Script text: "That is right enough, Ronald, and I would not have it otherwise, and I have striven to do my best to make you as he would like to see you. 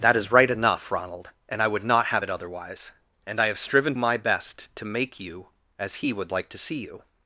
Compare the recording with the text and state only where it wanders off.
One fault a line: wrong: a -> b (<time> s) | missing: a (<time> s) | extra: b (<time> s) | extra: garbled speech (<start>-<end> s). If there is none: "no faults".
missing: to do (3.9 s)